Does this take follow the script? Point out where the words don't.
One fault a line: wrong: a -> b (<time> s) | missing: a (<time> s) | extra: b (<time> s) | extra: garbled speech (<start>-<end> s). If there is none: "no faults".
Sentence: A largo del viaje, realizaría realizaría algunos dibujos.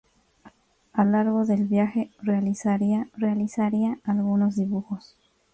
no faults